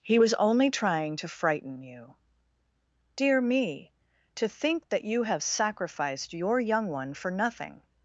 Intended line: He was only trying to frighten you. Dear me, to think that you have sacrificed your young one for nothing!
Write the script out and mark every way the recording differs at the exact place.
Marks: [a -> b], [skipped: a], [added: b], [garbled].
He was only trying to frighten you. Dear me, to think that you have sacrificed your young one for nothing!